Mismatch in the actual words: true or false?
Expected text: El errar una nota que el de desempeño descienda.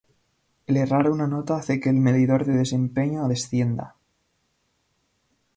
true